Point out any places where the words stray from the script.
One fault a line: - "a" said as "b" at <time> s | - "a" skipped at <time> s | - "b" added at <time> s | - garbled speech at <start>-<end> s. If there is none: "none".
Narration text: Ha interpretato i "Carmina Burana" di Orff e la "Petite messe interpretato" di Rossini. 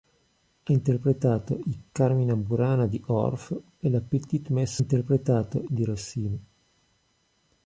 none